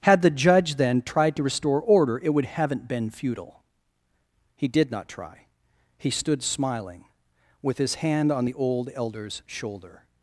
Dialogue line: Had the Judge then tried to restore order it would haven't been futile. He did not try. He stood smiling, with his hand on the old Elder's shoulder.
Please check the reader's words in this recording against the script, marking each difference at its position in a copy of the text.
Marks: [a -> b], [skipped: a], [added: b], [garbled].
Had the Judge then tried to restore order it would haven't been futile. He did not try. He stood smiling, with his hand on the old Elder's shoulder.